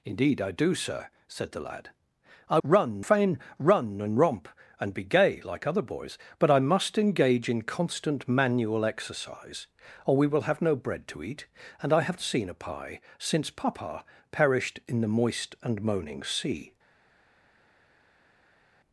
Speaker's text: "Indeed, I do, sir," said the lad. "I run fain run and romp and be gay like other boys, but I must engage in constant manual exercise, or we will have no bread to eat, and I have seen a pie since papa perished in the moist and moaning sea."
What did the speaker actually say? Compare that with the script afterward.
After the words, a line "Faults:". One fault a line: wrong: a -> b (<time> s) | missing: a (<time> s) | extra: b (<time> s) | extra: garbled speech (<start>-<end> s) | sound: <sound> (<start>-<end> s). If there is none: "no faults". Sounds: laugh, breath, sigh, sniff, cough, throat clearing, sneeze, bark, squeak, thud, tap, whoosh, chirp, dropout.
"Indeed, I do, sir," said the lad. "I run fain run and romp and be gay like other boys, but I must engage in constant manual exercise, or we will have no bread to eat, and I have seen a pie since papa perished in the moist and moaning sea."
Faults:
no faults